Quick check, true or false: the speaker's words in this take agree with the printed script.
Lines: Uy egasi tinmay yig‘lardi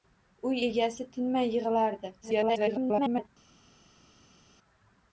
false